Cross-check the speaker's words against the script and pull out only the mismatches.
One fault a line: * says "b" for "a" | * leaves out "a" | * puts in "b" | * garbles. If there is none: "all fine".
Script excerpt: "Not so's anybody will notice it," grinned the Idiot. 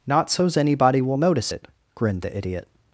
all fine